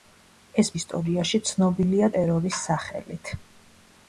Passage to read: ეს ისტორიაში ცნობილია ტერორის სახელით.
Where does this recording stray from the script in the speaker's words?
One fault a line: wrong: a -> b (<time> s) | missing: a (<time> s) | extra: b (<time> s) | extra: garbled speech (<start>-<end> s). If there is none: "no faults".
no faults